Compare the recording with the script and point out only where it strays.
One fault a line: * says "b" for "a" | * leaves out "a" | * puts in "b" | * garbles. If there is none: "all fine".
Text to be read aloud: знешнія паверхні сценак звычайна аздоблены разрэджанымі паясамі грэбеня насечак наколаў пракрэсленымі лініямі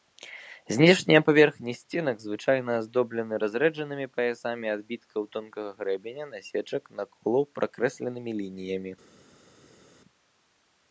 * puts in "адбіткаў тонкага"